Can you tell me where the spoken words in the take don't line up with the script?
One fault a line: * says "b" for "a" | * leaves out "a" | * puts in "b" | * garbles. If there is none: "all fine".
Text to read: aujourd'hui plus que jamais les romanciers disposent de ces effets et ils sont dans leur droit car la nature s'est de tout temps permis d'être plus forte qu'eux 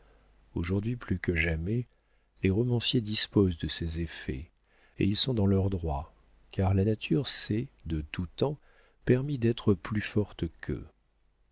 all fine